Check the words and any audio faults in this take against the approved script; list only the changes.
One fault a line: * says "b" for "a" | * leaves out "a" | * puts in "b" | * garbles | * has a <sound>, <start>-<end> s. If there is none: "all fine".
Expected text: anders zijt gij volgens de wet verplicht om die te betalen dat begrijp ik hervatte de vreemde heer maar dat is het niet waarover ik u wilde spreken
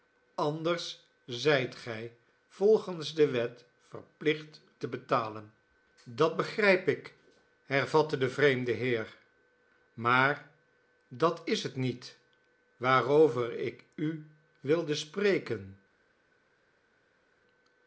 * leaves out "om die"